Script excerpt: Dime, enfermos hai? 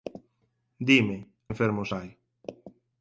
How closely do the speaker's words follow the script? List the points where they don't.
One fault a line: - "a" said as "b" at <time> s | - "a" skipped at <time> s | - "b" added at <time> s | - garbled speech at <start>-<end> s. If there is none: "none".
none